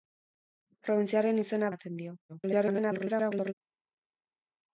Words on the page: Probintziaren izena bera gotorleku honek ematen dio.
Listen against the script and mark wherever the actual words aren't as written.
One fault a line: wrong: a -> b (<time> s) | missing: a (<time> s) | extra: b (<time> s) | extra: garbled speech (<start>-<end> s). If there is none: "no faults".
missing: bera gotorleku honek (1.7 s)
extra: garbled speech (2.3-3.5 s)